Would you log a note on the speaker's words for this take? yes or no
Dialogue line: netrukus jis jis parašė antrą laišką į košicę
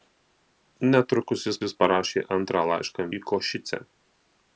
no